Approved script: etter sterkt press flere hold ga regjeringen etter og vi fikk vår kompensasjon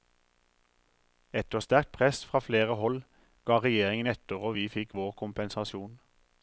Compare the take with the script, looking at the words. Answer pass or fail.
fail